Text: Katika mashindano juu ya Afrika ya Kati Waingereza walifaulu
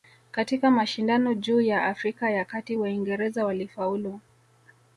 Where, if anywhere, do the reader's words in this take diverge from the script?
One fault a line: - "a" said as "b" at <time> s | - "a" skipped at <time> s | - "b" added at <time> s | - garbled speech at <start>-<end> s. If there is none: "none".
none